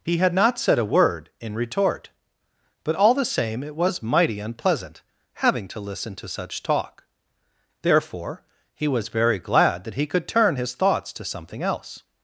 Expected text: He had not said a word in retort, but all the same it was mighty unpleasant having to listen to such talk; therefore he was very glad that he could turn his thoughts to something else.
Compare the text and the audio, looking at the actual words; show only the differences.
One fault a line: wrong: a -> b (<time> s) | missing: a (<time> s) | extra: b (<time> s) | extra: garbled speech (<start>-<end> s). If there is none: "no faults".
no faults